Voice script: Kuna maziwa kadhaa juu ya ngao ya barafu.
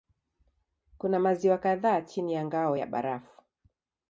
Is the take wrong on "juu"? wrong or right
wrong